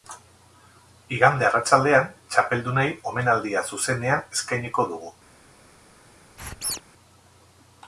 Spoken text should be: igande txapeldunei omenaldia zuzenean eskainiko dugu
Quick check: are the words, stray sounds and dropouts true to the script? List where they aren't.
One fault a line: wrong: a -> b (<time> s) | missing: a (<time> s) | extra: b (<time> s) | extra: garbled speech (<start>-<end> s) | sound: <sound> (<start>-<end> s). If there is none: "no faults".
extra: arratsaldean (1.5 s)
sound: squeak (6.4-6.8 s)